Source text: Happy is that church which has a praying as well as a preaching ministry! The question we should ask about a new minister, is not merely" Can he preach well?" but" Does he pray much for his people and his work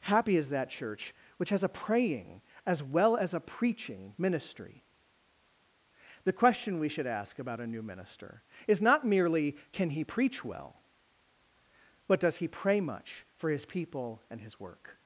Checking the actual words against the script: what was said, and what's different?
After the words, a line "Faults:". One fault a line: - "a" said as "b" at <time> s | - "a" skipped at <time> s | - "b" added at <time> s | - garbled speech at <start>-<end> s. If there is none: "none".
Happy is that church which has a praying as well as a preaching ministry! The question we should ask about a new minister, is not merely" Can he preach well?" but" Does he pray much for his people and his work
Faults:
none